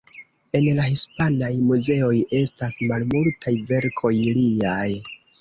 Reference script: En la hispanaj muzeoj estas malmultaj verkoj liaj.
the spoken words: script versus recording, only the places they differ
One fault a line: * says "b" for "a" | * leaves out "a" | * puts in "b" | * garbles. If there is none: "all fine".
all fine